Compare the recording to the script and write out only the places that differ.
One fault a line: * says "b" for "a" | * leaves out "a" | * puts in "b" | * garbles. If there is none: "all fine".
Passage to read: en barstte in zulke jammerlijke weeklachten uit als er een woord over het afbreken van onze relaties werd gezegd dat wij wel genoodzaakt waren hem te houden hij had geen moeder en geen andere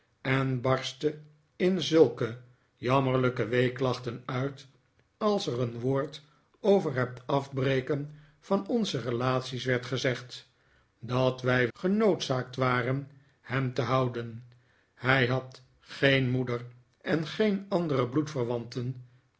* leaves out "wel"